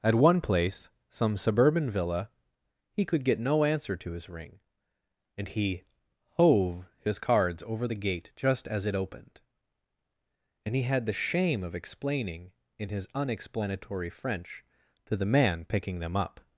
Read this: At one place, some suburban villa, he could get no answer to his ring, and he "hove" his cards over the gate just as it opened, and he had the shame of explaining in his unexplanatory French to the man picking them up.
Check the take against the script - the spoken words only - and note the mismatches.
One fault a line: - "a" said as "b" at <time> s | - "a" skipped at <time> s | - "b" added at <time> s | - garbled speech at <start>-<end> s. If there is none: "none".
none